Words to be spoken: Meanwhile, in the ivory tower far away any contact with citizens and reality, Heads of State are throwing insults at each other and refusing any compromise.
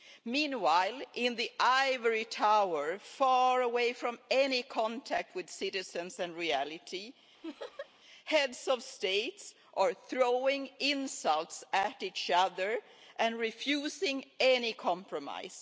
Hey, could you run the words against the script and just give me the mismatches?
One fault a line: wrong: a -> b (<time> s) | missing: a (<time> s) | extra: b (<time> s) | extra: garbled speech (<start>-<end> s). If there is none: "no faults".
extra: from (3.9 s)